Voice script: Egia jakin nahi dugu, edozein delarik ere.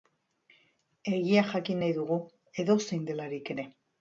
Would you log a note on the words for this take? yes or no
no